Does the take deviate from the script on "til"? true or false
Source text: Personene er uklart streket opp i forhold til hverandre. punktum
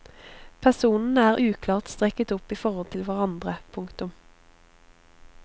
false